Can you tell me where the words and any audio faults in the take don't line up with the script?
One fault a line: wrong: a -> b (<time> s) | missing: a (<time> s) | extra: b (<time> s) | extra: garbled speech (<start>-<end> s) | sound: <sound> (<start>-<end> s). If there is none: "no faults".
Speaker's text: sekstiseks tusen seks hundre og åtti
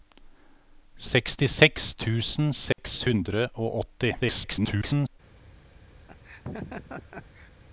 sound: dropout (2.7-2.8 s)
extra: garbled speech (4.2-5.2 s)
sound: laugh (6.1-7.5 s)